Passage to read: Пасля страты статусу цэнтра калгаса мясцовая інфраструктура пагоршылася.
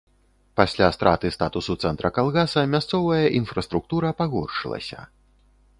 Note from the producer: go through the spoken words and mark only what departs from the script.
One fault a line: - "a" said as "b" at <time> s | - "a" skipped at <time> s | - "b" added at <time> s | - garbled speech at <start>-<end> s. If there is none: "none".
none